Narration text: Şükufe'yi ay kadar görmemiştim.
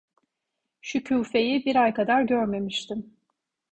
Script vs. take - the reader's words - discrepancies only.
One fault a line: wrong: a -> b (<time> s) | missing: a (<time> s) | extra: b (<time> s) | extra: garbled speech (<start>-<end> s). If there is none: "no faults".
extra: bir (1.6 s)